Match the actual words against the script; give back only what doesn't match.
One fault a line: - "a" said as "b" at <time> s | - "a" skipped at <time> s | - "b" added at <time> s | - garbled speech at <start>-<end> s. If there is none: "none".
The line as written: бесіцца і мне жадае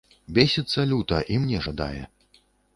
- "люта" added at 0.9 s